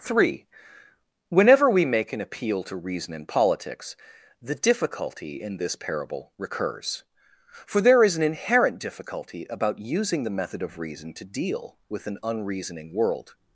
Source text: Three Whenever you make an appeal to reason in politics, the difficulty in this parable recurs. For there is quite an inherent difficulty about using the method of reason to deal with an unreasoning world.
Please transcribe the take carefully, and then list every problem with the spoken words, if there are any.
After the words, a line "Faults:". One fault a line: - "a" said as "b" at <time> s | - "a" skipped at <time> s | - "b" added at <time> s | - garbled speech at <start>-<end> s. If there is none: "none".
Three Whenever we make an appeal to reason in politics, the difficulty in this parable recurs. For there is an inherent difficulty about using the method of reason to deal with an unreasoning world.
Faults:
- "you" said as "we" at 1.7 s
- "quite" skipped at 8.2 s